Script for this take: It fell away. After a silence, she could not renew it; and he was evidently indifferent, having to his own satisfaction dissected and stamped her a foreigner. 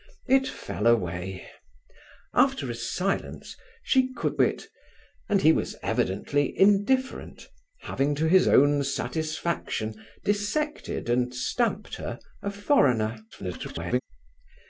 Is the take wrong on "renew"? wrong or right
wrong